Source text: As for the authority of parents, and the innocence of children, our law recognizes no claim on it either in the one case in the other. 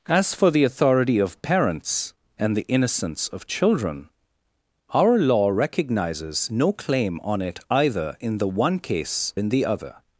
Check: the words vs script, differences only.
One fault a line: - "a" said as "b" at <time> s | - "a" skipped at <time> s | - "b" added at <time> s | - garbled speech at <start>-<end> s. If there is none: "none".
none